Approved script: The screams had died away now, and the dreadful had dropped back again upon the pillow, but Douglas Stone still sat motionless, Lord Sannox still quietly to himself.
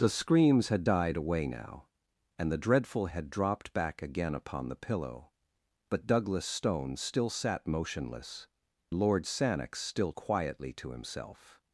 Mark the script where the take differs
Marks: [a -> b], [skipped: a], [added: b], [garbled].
The screams had died away now, and the dreadful had dropped back again upon the pillow, but Douglas Stone still sat motionless, Lord Sannox still quietly to himself.